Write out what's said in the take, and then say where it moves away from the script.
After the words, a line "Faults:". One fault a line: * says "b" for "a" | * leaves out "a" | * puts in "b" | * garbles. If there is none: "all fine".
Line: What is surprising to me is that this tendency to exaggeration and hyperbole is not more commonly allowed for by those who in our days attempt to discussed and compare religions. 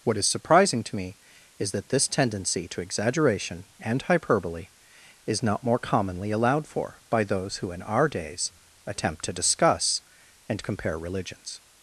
What is surprising to me is that this tendency to exaggeration and hyperbole is not more commonly allowed for by those who in our days attempt to discuss and compare religions.
Faults:
* says "discuss" for "discussed"